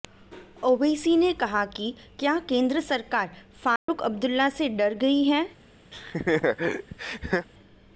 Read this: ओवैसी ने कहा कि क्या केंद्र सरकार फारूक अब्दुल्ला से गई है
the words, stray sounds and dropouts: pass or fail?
fail